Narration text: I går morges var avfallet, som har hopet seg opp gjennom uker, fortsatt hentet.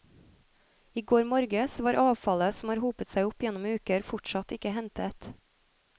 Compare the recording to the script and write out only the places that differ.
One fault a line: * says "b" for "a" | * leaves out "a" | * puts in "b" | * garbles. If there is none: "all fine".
* puts in "ikke"